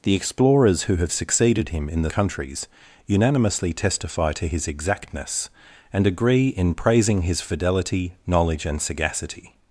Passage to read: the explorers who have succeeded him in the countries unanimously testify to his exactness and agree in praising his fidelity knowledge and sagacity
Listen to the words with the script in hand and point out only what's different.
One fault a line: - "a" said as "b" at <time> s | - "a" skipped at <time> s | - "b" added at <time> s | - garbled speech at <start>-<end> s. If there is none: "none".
none